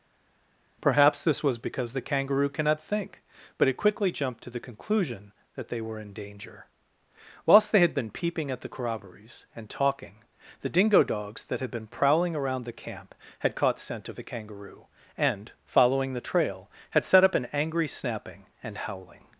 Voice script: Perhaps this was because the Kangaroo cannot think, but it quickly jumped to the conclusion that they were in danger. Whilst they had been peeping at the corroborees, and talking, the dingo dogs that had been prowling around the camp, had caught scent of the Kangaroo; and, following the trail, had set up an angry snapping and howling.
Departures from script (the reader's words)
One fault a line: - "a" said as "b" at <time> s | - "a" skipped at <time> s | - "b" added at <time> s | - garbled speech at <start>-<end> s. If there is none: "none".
none